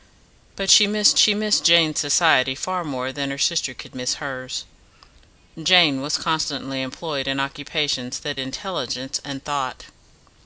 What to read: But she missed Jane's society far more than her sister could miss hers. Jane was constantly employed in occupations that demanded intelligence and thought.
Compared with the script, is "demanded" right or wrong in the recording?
wrong